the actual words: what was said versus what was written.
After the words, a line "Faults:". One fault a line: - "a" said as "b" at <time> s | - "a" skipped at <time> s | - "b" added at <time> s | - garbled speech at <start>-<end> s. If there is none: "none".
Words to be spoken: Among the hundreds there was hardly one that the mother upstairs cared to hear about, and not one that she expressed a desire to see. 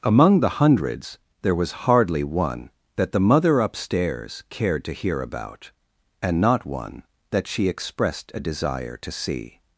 Among the hundreds there was hardly one that the mother upstairs cared to hear about, and not one that she expressed a desire to see.
Faults:
none